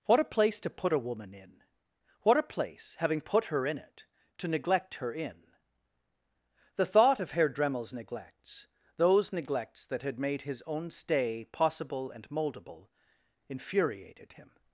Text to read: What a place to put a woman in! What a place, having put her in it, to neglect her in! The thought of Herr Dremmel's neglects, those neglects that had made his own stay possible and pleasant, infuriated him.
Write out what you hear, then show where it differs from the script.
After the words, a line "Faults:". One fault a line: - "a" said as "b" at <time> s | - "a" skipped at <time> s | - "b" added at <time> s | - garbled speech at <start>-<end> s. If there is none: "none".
What a place to put a woman in! What a place, having put her in it, to neglect her in! The thought of Herr Dremmel's neglects, those neglects that had made his own stay possible and moldable, infuriated him.
Faults:
- "pleasant" said as "moldable" at 12.3 s